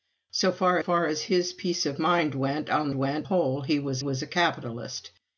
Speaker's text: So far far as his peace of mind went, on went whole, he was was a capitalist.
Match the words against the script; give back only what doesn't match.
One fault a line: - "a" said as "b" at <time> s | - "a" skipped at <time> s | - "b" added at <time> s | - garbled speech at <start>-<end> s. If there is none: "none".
none